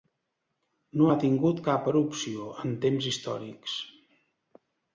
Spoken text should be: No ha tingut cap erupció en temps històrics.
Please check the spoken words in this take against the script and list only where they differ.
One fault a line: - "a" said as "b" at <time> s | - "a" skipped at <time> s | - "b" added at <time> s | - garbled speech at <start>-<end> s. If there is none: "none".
none